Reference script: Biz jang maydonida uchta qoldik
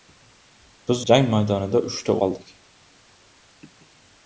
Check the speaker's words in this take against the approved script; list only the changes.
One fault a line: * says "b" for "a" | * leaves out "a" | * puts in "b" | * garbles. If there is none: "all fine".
all fine